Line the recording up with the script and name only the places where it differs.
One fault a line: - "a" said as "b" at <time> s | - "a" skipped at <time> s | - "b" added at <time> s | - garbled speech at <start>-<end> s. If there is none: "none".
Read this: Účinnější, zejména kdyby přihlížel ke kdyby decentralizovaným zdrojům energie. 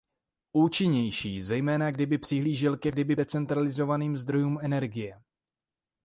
none